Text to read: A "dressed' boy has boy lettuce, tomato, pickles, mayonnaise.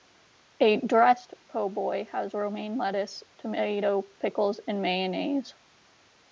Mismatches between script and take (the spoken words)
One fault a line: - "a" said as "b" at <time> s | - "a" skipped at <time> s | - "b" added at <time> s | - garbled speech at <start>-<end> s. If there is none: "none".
- "po" added at 1.5 s
- "boy" said as "romaine" at 2.3 s
- "and" added at 4.6 s